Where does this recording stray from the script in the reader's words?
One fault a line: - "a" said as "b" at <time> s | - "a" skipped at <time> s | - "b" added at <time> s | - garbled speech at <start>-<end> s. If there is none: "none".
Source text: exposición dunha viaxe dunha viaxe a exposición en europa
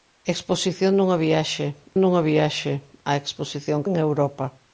none